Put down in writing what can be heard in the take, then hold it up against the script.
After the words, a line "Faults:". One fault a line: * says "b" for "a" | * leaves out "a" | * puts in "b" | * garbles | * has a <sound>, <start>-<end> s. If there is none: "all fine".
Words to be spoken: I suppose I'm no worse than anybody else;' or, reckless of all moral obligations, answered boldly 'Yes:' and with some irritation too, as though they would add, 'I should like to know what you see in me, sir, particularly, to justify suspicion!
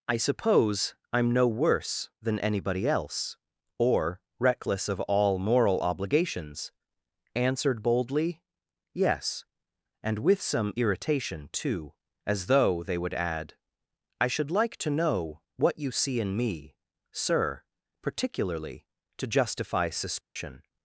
I suppose I'm no worse than anybody else;' or, reckless of all moral obligations, answered boldly 'Yes:' and with some irritation too, as though they would add, 'I should like to know what you see in me, sir, particularly, to justify suspicion!
Faults:
* has a dropout, 20.2-20.4 s